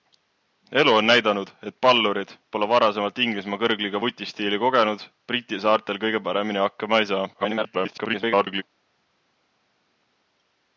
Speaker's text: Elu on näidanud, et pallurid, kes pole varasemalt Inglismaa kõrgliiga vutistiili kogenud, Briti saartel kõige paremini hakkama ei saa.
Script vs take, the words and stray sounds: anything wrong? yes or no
yes